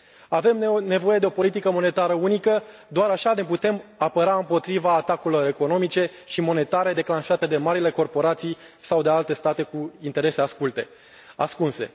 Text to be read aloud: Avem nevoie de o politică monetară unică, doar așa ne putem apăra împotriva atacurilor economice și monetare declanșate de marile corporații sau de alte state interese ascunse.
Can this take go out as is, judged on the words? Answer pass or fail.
fail